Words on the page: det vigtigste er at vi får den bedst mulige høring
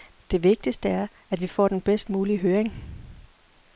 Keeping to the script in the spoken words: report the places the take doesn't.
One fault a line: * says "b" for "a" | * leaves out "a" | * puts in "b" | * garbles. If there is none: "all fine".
all fine